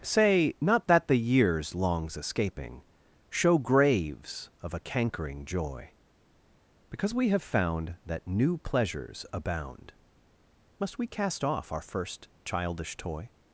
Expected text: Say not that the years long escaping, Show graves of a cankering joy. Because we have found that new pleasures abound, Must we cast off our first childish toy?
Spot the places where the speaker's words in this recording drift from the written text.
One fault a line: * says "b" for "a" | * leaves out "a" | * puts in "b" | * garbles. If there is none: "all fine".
* says "longs" for "long"